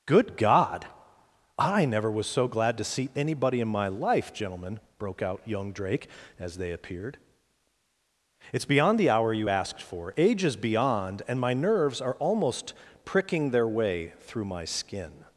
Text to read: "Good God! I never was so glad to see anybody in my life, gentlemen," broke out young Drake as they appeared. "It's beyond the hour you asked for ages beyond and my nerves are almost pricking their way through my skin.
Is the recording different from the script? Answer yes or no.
no